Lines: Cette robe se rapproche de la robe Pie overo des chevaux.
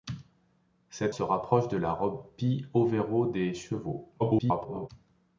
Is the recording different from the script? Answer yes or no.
yes